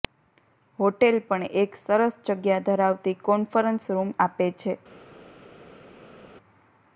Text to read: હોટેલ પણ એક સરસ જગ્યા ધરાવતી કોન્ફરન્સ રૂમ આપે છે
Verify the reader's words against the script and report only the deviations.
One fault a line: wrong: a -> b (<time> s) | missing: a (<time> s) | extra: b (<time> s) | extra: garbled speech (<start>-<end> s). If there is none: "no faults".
no faults